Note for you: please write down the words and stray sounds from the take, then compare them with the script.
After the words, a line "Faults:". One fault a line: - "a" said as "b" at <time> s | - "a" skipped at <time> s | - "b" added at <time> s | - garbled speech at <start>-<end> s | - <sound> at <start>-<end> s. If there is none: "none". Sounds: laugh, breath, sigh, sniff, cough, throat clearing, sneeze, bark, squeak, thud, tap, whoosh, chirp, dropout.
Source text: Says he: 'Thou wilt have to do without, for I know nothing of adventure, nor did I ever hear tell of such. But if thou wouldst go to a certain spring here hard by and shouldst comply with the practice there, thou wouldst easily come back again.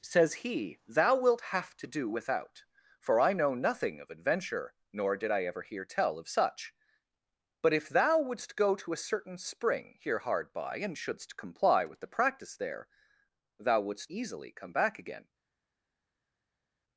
Says he: 'Thou wilt have to do without, for I know nothing of adventure, nor did I ever hear tell of such. But if thou wouldst go to a certain spring here hard by and shouldst comply with the practice there, thou wouldst easily come back again.
Faults:
none